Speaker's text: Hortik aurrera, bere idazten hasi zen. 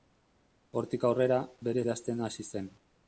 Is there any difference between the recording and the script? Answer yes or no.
no